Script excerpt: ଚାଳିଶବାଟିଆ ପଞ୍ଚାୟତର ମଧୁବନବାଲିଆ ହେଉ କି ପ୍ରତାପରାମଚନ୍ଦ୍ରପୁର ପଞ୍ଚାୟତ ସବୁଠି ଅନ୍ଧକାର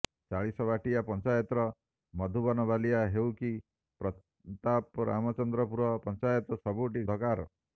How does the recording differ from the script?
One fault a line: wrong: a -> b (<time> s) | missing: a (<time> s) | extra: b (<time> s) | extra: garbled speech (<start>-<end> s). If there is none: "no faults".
no faults